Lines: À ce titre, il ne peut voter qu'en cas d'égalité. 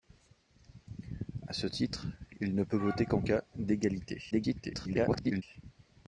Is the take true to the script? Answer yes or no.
no